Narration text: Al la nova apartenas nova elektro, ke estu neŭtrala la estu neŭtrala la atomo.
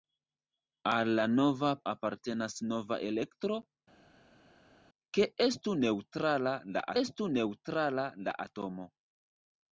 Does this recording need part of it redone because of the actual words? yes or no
no